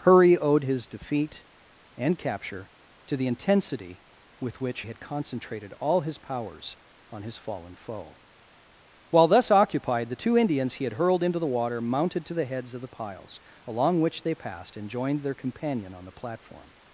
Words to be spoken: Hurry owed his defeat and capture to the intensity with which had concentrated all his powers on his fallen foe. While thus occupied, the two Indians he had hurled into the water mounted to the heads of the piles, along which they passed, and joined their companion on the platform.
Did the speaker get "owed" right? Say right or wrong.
right